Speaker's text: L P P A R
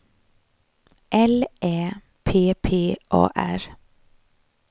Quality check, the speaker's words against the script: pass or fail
fail